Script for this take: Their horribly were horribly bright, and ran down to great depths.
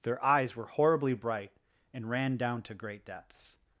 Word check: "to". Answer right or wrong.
right